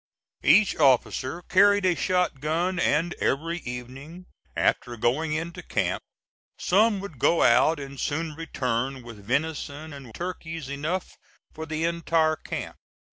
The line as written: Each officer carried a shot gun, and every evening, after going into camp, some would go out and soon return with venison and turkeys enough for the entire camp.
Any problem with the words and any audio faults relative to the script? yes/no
no